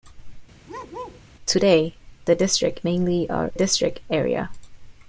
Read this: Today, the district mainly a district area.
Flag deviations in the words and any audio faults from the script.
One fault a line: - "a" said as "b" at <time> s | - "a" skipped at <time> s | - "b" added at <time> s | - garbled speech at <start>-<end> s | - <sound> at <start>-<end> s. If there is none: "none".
- bark at 0.7-1.2 s